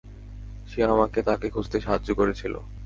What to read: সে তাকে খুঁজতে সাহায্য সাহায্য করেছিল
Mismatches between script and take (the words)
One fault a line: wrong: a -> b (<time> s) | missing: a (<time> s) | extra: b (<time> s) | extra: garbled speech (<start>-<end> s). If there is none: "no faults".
extra: আমাকে (0.8 s)
missing: সাহায্য (2.1 s)